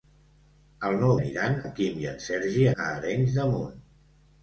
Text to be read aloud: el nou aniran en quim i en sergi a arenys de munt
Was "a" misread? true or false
false